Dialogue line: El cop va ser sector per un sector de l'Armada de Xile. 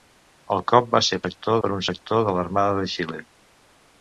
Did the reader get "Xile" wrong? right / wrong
right